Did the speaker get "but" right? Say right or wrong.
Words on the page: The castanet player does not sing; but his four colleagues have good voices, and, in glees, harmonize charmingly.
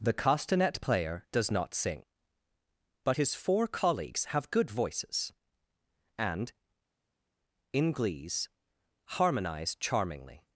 right